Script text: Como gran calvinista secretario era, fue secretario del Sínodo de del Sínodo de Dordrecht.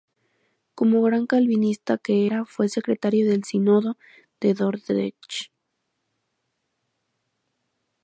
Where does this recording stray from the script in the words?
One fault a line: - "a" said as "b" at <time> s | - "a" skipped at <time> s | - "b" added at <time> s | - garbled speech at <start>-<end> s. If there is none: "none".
- "secretario" said as "que" at 2.0 s
- "del Sínodo de" skipped at 4.5 s